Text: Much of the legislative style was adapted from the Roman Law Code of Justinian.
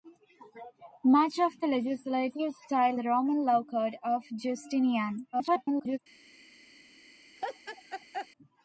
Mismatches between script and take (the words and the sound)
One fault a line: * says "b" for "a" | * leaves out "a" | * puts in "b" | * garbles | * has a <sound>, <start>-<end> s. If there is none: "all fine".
* leaves out "was adapted from"
* garbles
* has a laugh, 7.4-8.3 s